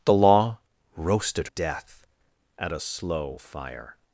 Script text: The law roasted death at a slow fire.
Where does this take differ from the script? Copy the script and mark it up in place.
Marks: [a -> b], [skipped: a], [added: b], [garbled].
The law roasted death at a slow fire.